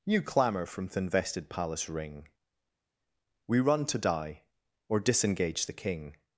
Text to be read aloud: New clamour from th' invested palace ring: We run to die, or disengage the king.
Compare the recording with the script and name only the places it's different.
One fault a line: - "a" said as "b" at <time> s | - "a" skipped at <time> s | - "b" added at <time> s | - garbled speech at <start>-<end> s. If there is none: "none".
none